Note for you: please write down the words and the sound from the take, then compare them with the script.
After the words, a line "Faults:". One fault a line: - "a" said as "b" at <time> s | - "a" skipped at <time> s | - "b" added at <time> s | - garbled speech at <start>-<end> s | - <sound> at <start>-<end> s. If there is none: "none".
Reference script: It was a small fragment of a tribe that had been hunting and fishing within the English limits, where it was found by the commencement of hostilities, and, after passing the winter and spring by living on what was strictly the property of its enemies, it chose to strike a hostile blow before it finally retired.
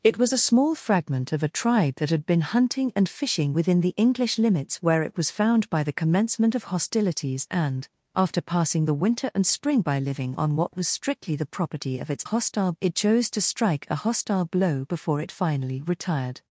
It was a small fragment of a tribe that had been hunting and fishing within the English limits, where it was found by the commencement of hostilities, and, after passing the winter and spring by living on what was strictly the property of its hostile, it chose to strike a hostile blow before it finally retired.
Faults:
- "enemies" said as "hostile" at 12.2 s